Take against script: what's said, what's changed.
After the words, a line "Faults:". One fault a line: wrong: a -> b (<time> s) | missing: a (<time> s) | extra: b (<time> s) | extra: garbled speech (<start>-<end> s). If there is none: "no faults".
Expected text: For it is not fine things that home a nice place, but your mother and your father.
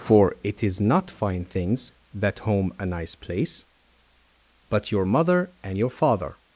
For it is not fine things that home a nice place, but your mother and your father.
Faults:
no faults